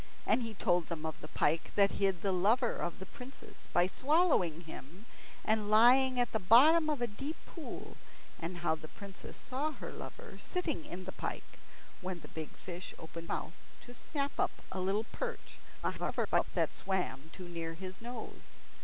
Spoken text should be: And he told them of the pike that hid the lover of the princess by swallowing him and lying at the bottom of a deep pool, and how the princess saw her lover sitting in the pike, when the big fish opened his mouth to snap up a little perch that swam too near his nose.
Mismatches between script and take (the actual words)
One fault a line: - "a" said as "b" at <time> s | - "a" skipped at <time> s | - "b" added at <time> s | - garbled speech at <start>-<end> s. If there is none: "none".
- "his" skipped at 13.3 s
- garbled speech at 15.8-16.5 s